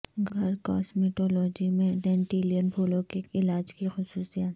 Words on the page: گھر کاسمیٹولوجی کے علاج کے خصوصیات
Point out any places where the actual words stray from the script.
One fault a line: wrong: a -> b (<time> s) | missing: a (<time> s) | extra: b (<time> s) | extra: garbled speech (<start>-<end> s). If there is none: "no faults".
extra: میں ڈینڈیلن پھولوں (1.7 s)
wrong: کے -> کی (3.7 s)